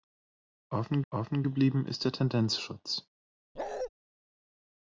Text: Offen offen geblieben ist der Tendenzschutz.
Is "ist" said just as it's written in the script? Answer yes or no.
yes